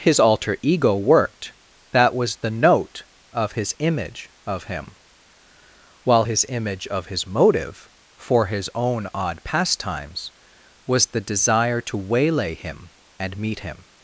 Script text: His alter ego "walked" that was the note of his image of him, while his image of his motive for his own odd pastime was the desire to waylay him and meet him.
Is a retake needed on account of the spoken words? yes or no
yes